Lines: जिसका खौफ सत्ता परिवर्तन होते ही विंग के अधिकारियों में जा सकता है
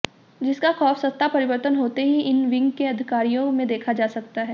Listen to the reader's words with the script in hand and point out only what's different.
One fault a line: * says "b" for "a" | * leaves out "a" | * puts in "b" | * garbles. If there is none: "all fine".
* puts in "इन"
* puts in "देखा"